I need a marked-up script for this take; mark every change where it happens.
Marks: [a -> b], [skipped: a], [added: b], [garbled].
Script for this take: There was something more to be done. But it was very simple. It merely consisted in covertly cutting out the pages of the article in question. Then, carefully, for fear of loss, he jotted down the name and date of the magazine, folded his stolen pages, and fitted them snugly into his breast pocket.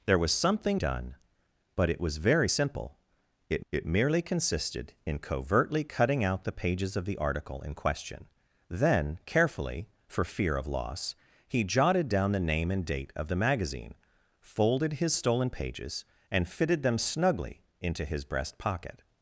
There was something [skipped: more to be] done. But it was very simple. It [added: it] merely consisted in covertly cutting out the pages of the article in question. Then, carefully, for fear of loss, he jotted down the name and date of the magazine, folded his stolen pages, and fitted them snugly into his breast pocket.